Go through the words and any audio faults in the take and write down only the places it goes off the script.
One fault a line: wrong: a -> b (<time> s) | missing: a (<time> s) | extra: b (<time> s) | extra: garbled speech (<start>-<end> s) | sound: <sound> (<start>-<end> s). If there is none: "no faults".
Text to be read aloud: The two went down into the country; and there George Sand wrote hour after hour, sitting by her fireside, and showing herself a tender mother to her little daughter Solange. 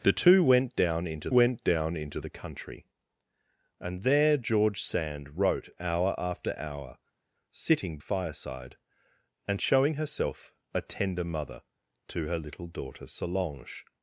extra: went down into (1.3 s)
missing: by her (8.0 s)